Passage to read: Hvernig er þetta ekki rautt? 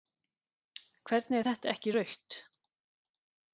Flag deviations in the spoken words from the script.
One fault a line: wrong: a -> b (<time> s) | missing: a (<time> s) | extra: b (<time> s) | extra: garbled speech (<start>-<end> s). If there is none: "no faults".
no faults